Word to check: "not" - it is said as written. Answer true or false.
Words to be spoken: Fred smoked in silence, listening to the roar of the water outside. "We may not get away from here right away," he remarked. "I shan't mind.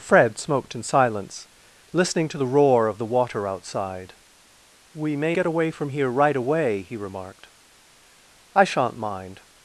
false